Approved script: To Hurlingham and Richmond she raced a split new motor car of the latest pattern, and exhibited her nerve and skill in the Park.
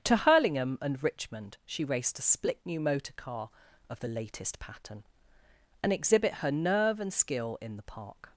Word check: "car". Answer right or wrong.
right